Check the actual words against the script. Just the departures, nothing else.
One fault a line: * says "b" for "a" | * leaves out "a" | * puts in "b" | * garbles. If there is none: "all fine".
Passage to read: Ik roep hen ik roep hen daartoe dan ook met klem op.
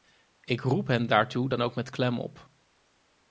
* leaves out "ik roep hen"